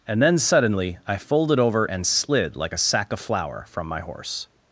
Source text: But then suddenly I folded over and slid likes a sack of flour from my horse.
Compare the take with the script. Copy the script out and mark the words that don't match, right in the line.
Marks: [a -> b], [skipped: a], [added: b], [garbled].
[But -> And] then suddenly I folded over and slid [likes -> like] a sack of flour from my horse.